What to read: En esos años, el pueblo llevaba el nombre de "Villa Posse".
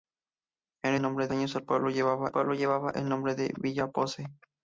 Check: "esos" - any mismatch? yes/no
yes